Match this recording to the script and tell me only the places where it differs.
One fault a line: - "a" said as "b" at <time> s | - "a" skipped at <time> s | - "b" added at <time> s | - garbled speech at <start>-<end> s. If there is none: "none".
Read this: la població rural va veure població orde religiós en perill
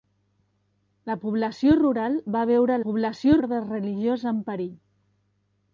none